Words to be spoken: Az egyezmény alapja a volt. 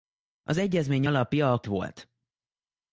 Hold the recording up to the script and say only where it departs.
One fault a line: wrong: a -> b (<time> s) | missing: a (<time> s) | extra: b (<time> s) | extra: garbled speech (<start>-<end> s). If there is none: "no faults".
no faults